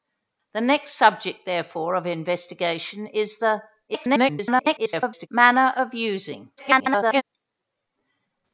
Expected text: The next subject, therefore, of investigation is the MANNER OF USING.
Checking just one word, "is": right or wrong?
right